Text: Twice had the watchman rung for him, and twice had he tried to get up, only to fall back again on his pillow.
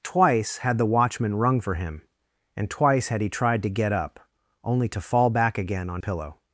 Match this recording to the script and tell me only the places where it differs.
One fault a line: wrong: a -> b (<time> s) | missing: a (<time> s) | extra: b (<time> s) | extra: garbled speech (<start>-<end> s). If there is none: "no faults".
missing: his (6.0 s)